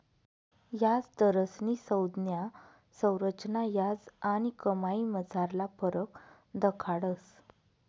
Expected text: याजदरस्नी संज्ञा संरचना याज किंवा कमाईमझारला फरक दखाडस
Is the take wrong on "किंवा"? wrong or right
wrong